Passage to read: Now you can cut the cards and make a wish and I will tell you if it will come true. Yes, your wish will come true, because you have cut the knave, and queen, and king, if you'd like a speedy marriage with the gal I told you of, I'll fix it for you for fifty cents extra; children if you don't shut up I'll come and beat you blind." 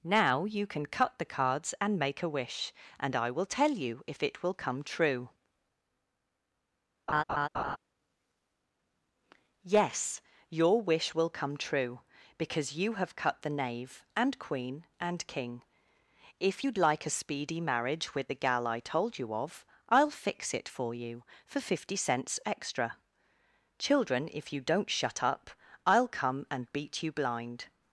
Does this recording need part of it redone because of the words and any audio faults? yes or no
yes